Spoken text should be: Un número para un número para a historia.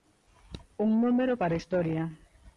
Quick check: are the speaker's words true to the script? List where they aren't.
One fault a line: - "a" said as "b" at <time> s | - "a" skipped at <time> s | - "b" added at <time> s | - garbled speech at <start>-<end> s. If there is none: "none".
- "un número para" skipped at 1.6 s